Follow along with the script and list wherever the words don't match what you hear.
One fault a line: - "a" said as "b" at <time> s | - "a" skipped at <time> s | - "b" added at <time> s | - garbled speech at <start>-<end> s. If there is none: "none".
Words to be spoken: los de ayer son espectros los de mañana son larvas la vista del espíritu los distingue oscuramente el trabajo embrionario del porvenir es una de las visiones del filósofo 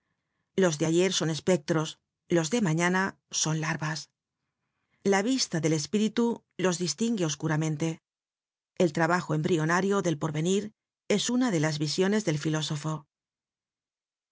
none